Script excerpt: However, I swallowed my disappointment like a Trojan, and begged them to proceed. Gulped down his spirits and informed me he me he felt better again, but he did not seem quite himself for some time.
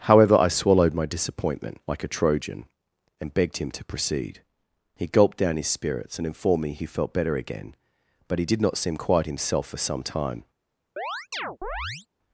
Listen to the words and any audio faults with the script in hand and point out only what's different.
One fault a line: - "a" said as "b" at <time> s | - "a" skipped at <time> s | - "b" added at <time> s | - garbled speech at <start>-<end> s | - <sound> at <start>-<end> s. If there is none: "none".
- "them" said as "him" at 3.6 s
- "He" added at 5.0 s
- "me he" skipped at 6.9 s
- chirp at 11.0-12.1 s